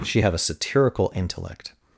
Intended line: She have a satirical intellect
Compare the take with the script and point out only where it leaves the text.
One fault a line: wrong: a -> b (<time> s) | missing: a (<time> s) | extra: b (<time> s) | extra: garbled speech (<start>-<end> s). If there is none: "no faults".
no faults